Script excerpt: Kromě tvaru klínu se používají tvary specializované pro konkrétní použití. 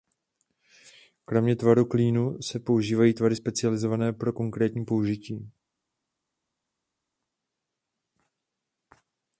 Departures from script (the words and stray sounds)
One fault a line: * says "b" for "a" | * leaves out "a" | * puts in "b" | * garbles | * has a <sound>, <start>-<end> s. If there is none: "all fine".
all fine